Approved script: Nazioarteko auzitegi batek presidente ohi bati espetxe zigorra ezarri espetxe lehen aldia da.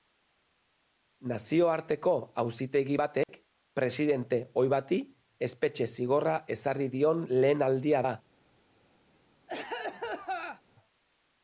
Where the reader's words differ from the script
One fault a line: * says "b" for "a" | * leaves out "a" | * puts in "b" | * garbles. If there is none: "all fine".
* says "dion" for "espetxe"